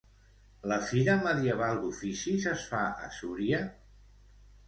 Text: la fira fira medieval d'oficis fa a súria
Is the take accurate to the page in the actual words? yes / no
no